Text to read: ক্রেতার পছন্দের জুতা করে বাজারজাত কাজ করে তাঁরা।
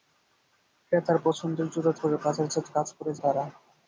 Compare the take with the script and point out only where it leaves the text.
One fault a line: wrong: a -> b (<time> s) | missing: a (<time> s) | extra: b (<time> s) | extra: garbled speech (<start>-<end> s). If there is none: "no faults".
no faults